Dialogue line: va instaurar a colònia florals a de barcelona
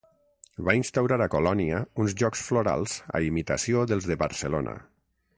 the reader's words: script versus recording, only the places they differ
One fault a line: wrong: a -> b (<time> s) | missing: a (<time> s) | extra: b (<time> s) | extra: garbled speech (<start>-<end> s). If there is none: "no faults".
extra: uns jocs (2.0 s)
extra: imitació dels (3.3 s)